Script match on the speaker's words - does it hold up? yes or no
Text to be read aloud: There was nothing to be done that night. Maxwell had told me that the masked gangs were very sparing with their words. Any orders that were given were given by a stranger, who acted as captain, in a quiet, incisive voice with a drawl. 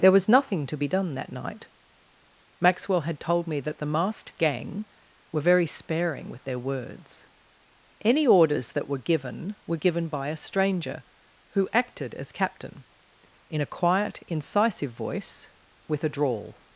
no